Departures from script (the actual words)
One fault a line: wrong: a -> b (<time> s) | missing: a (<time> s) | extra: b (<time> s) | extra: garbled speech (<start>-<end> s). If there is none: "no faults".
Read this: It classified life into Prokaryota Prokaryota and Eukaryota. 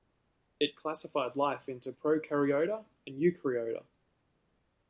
missing: Prokaryota (2.8 s)